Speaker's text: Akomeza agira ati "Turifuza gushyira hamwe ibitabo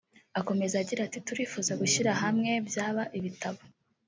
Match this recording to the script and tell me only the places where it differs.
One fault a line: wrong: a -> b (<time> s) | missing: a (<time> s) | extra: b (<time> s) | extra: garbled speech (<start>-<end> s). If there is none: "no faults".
extra: byaba (2.7 s)